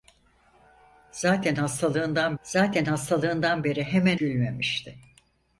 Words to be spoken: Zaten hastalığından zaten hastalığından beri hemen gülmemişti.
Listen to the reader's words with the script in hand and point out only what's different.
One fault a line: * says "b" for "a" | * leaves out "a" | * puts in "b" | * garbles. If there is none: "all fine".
all fine